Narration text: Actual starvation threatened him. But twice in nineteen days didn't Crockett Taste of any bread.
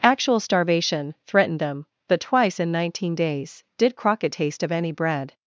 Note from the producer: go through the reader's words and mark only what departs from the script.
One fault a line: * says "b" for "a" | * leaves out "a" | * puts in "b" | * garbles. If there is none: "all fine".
* says "them" for "him"
* says "did" for "didn't"